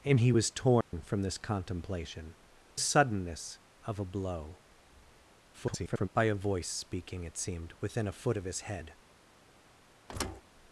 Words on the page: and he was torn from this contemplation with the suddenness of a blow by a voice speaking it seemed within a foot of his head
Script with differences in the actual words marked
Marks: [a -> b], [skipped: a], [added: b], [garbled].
and he was torn from this contemplation [skipped: with the] suddenness of a blow [garbled] by a voice speaking it seemed within a foot of his head